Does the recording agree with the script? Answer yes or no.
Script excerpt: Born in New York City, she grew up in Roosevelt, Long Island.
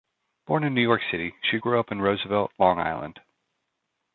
yes